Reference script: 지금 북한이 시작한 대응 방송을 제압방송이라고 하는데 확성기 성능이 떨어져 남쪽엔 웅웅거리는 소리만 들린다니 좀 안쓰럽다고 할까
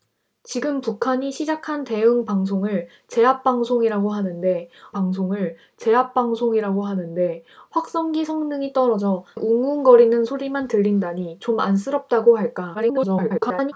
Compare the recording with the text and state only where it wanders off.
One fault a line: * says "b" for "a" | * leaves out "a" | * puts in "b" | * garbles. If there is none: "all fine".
* puts in "방송을 제압방송이라고 하는데"
* leaves out "남쪽엔"
* garbles